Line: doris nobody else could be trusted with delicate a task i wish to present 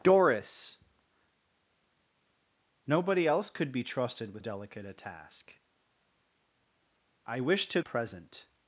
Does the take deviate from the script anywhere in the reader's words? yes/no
no